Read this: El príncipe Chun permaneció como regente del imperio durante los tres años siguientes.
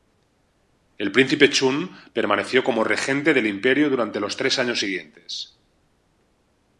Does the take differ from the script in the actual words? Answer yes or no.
no